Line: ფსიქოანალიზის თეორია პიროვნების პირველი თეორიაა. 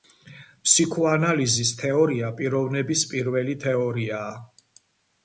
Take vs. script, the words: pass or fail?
pass